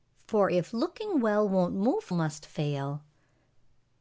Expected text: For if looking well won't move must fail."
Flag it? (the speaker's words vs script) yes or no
no